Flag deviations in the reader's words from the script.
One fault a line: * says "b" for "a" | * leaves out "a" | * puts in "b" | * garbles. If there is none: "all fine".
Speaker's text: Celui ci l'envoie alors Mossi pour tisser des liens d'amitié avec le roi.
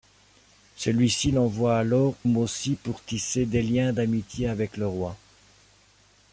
all fine